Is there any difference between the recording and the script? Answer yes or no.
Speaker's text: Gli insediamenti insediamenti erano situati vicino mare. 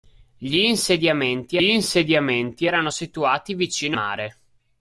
no